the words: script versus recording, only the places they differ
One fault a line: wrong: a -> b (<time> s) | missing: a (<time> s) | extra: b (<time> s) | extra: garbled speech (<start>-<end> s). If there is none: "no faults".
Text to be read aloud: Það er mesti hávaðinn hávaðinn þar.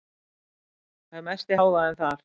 missing: hávaðinn (2.0 s)